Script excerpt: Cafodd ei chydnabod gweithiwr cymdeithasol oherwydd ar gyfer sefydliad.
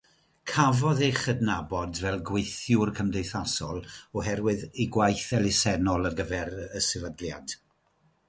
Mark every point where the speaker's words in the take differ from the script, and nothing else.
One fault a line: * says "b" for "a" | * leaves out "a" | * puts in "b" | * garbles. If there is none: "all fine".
* puts in "fel"
* puts in "ei gwaith elusennol"
* puts in "y"